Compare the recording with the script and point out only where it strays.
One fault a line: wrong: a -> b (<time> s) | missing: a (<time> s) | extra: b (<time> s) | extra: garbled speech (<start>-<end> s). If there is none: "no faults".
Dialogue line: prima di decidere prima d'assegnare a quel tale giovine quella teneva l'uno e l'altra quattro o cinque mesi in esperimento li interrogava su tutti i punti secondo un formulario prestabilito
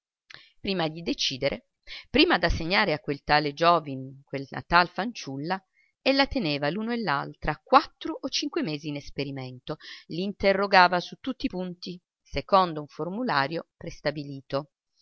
extra: tal fanciulla ella (4.7 s)